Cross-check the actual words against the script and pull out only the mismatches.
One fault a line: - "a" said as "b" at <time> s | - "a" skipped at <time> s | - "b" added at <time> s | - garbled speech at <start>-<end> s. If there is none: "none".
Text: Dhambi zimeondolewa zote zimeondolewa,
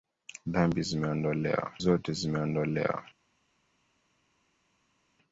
none